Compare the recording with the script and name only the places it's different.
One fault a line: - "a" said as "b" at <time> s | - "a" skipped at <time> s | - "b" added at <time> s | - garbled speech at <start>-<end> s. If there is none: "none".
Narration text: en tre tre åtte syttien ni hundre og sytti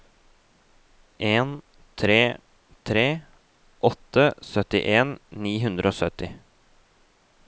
none